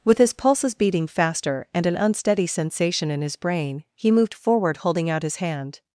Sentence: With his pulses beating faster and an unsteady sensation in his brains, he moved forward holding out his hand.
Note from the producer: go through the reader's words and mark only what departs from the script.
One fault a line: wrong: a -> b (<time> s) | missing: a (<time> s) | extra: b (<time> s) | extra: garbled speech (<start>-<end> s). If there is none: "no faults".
wrong: brains -> brain (3.4 s)